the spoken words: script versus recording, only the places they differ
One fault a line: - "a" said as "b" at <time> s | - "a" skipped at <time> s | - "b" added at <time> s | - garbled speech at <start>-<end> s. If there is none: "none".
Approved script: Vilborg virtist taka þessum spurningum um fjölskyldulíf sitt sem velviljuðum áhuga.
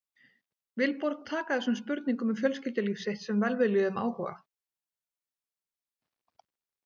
- "virtist" skipped at 1.3 s